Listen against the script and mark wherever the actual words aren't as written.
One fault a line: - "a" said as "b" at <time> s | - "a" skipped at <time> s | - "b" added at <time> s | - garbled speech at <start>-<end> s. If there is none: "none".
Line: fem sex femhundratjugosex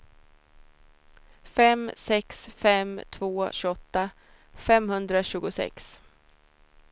- "fem två tjugoåtta" added at 2.5 s